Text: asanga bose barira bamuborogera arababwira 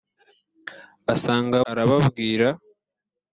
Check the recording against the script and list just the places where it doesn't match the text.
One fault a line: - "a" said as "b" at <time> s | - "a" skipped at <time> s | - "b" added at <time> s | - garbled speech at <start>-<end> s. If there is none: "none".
- "bose barira bamuborogera" skipped at 1.6 s